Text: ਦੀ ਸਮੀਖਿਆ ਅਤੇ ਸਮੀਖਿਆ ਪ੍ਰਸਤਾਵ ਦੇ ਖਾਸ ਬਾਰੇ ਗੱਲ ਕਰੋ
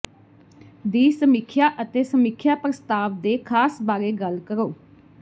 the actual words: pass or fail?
pass